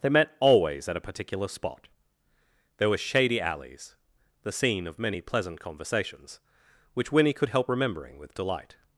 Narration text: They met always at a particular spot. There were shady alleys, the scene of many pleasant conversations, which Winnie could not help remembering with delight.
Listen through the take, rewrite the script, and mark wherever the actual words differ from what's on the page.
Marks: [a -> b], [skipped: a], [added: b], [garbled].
They met always at a particular spot. There were shady alleys, the scene of many pleasant conversations, which Winnie could [skipped: not] help remembering with delight.